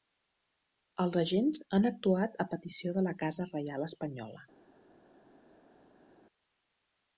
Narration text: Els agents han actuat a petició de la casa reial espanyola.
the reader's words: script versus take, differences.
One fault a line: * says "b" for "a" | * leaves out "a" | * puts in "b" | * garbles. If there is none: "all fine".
all fine